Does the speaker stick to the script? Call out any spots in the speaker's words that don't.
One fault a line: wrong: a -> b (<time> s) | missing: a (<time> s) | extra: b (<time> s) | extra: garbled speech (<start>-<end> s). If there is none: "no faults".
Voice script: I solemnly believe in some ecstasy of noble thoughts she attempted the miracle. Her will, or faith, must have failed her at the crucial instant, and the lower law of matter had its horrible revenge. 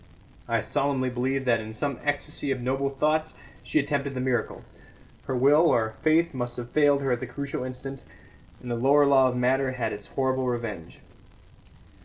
extra: that (1.4 s)